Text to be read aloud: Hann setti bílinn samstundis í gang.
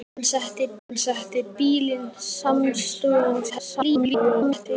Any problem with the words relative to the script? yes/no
yes